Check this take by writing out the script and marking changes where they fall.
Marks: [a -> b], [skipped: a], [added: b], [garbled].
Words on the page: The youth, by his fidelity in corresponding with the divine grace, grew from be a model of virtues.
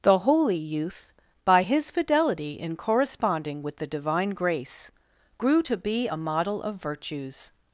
The [added: holy] youth, by his fidelity in corresponding with the divine grace, grew [from -> to] be a model of virtues.